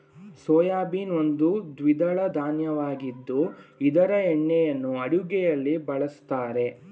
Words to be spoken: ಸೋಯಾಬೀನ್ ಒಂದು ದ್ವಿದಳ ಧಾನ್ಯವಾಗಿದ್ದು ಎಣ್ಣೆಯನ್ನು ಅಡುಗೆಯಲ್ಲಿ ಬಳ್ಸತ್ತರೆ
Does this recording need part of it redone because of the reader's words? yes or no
yes